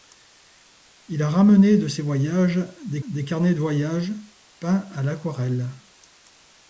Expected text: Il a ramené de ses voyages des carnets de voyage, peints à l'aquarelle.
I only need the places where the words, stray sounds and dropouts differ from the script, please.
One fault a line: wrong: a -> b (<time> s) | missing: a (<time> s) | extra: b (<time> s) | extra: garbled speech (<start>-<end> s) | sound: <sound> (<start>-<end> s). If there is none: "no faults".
extra: des (3.1 s)